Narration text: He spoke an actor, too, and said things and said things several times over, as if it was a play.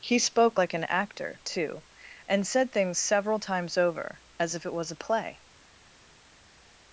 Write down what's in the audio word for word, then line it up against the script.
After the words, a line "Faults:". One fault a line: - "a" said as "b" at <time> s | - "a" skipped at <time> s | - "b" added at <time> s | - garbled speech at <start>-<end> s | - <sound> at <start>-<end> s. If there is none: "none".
He spoke like an actor, too, and said things several times over, as if it was a play.
Faults:
- "like" added at 0.6 s
- "and said things" skipped at 3.0 s